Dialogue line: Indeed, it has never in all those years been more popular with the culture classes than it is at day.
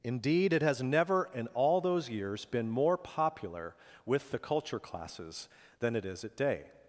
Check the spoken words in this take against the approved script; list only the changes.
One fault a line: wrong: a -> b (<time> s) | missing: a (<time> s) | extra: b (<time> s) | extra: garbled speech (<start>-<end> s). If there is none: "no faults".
no faults